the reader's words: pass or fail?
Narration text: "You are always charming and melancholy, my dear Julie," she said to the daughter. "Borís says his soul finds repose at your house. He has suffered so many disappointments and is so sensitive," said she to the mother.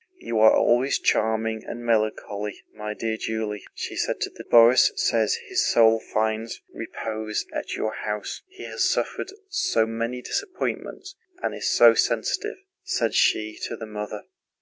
fail